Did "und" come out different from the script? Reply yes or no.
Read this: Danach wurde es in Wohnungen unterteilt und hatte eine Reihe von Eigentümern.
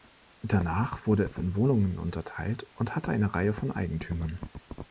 no